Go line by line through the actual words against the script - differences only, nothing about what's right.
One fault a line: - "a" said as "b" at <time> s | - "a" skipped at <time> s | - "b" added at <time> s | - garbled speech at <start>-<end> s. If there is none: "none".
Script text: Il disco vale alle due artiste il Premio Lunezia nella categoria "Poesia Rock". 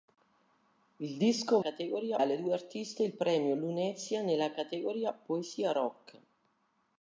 - "vale" said as "categoria" at 1.6 s